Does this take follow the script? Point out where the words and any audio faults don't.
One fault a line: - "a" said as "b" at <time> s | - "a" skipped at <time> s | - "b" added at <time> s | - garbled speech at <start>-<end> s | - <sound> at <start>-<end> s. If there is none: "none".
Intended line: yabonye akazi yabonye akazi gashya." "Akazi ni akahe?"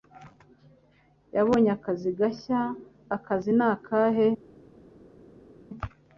- "yabonye akazi" skipped at 2.1 s